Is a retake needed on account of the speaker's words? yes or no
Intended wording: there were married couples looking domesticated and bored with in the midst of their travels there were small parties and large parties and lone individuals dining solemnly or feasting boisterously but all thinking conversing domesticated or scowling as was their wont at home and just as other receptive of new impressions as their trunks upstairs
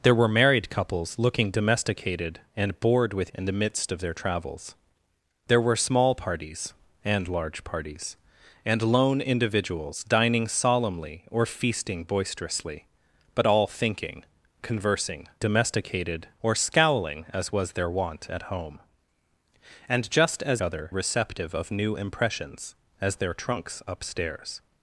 no